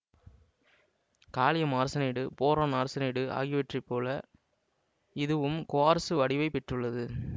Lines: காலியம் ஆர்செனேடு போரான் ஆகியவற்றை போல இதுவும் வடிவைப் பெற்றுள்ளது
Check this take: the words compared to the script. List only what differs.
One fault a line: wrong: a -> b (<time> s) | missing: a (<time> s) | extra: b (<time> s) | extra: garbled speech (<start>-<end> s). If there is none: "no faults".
extra: ஆர்செனேடு (2.7 s)
extra: குவார்ட்சு (5.7 s)